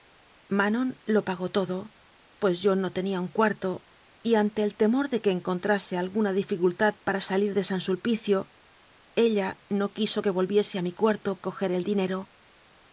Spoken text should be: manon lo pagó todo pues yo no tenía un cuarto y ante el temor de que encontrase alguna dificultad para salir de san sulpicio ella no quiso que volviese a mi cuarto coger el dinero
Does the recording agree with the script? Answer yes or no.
yes